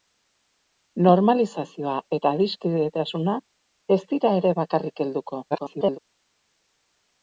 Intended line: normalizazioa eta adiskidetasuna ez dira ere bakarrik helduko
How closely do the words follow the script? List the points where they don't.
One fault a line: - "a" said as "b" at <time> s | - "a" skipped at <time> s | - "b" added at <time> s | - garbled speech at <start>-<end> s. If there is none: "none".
- garbled speech at 5.5-6.0 s